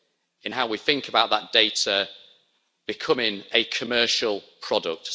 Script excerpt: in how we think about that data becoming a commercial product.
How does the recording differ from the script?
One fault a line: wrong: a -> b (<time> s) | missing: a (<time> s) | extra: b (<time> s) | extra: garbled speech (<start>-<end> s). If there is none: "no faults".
no faults